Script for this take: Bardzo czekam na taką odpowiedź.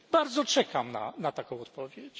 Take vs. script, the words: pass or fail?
pass